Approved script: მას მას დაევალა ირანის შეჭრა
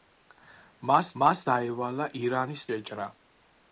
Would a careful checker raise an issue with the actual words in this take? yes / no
no